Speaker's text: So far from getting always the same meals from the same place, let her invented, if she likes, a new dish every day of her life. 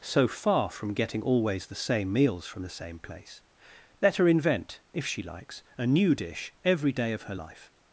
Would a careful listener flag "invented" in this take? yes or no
yes